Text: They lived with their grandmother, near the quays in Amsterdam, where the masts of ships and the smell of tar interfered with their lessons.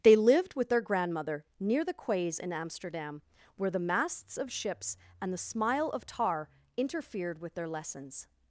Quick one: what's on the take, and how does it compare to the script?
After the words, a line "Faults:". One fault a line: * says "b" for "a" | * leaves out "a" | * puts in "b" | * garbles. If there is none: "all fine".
They lived with their grandmother, near the quays in Amsterdam, where the masts of ships and the smile of tar interfered with their lessons.
Faults:
* says "smile" for "smell"